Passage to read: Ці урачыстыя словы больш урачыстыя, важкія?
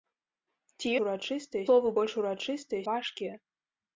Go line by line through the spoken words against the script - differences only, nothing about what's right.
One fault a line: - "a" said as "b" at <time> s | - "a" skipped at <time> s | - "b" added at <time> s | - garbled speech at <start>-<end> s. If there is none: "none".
none